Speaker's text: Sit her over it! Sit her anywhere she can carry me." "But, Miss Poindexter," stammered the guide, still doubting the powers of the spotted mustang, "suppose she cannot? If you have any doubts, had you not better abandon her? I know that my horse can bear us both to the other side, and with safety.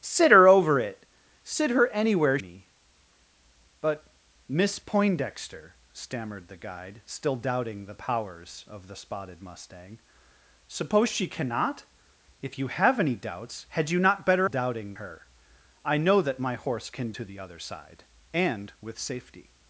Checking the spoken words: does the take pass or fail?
fail